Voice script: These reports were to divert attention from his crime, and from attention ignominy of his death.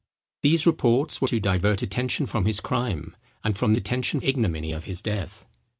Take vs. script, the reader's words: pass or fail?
pass